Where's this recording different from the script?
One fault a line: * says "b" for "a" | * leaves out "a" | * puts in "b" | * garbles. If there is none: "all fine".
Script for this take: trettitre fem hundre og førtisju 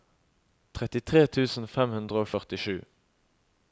* puts in "tusen"